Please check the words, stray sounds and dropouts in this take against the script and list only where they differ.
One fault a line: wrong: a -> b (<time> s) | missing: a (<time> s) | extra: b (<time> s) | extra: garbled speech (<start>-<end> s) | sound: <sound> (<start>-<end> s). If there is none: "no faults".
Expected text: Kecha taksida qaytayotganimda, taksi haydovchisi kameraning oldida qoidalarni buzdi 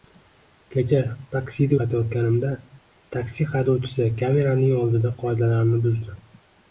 no faults